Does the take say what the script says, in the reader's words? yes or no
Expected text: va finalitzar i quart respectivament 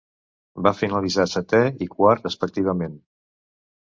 no